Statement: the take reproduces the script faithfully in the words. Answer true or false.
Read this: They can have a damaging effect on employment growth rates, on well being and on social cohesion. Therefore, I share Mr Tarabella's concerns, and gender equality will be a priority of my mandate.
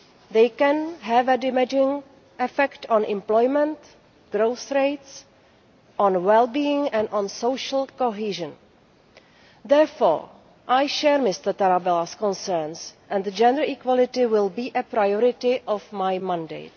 true